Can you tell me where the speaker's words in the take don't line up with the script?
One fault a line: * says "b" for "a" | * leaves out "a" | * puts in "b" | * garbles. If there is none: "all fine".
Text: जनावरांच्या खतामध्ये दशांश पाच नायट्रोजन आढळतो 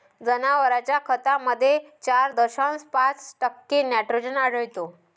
* puts in "चार"
* puts in "टक्के"